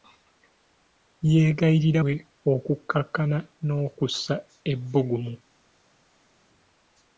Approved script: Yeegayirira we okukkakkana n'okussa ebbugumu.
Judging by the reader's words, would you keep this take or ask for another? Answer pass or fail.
pass